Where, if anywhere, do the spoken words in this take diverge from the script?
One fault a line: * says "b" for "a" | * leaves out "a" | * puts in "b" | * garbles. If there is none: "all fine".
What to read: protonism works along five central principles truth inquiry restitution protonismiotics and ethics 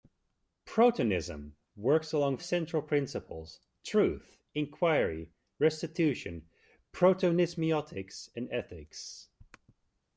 * leaves out "five"